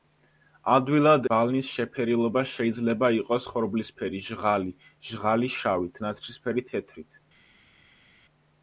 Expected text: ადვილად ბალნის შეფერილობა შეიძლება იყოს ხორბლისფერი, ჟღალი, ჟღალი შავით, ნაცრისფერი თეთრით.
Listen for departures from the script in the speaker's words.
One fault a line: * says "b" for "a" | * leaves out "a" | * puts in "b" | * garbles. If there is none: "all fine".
all fine